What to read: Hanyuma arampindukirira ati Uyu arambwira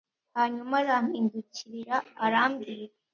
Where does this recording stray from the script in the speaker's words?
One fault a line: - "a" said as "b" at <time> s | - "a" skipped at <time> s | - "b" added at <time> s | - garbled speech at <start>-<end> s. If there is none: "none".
- "ati Uyu" skipped at 2.0 s